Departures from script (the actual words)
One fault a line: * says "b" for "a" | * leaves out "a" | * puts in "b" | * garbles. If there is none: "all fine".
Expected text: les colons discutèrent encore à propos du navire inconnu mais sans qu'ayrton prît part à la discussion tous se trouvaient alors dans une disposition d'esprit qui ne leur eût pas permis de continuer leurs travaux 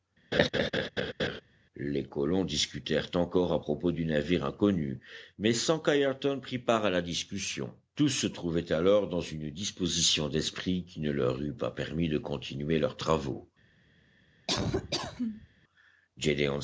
all fine